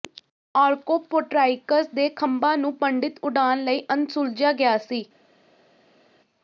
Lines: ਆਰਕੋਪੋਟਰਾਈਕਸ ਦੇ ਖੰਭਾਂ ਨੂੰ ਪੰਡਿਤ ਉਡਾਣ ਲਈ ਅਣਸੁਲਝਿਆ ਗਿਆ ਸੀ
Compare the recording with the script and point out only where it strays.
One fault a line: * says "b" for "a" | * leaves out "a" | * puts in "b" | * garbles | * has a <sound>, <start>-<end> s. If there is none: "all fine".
all fine